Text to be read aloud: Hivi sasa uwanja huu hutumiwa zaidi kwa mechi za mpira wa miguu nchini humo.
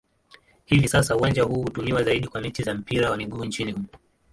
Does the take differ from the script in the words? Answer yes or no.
no